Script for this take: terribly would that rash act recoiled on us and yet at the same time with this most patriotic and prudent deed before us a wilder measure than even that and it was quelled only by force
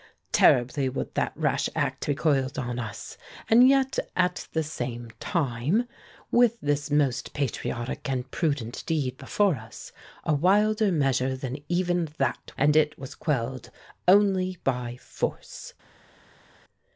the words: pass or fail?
pass